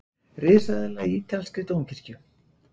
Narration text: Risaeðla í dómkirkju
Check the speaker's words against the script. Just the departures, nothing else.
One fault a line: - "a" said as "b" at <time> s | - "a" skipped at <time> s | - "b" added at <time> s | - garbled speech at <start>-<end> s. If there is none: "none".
- "ítalskri" added at 1.1 s